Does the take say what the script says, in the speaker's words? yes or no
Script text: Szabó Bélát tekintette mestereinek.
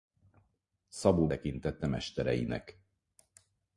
no